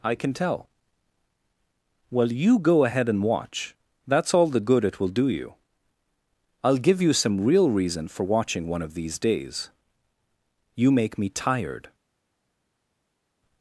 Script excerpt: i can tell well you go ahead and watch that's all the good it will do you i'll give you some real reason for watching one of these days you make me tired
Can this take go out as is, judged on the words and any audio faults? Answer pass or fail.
pass